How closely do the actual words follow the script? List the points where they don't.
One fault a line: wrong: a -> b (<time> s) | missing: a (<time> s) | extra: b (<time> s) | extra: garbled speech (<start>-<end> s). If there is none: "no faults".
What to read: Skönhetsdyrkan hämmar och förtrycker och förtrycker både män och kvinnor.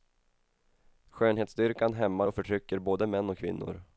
missing: och förtrycker (2.8 s)